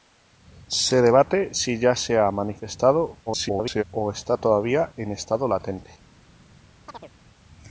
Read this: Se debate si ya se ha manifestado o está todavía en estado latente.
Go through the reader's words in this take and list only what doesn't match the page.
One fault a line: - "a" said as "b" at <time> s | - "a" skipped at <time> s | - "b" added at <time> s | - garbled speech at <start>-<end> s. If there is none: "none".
- garbled speech at 3.3-3.8 s